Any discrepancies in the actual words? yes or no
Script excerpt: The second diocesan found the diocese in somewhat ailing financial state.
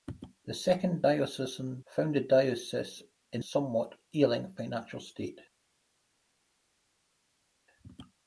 no